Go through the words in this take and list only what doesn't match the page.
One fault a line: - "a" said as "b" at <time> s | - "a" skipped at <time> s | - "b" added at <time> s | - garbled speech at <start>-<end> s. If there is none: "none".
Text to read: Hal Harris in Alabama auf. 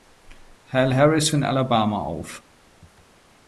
none